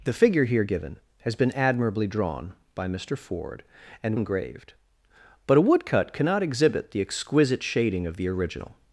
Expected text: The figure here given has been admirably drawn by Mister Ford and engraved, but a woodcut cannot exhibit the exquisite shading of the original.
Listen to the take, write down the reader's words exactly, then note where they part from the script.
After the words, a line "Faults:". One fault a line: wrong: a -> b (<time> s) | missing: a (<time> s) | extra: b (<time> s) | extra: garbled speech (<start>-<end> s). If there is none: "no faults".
The figure here given has been admirably drawn by Mister Ford and engraved, but a woodcut cannot exhibit the exquisite shading of the original.
Faults:
no faults